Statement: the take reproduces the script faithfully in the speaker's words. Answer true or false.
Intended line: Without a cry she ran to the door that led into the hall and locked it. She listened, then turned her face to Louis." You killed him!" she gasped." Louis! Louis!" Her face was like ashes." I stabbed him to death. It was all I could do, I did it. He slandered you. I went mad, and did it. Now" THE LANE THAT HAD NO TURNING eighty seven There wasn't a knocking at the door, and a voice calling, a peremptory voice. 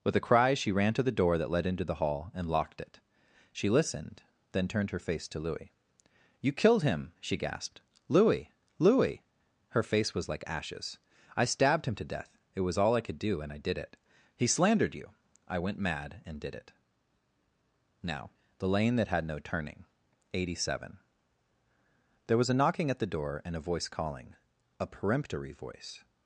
false